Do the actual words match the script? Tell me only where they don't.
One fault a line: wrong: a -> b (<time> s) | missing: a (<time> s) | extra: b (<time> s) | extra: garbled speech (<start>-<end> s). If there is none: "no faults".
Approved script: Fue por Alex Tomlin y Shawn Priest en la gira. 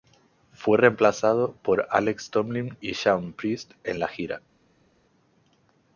extra: reemplazado (0.8 s)